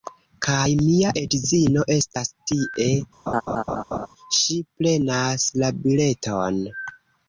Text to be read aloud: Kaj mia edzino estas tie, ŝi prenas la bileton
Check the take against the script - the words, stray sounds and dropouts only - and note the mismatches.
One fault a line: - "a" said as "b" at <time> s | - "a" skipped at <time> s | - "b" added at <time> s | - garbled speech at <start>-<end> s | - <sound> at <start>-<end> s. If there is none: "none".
- laugh at 3.3-4.1 s